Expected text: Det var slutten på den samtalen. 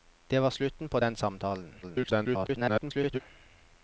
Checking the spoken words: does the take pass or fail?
fail